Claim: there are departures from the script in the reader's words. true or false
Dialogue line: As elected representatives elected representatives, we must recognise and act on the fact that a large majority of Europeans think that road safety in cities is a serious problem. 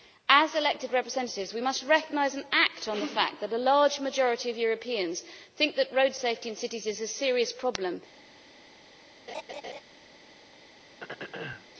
true